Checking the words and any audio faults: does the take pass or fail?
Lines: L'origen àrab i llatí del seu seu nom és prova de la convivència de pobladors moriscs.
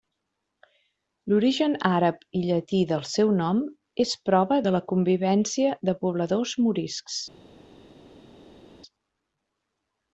fail